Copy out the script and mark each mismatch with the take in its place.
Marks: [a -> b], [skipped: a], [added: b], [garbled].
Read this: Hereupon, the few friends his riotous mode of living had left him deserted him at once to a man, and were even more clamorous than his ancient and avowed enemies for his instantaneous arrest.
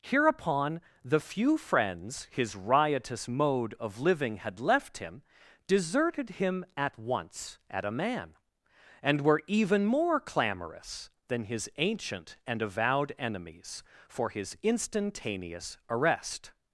Hereupon, the few friends his riotous mode of living had left him deserted him at once [to -> at] a man, and were even more clamorous than his ancient and avowed enemies for his instantaneous arrest.